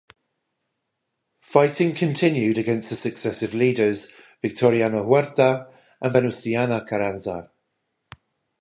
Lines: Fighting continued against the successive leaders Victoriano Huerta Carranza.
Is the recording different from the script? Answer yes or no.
yes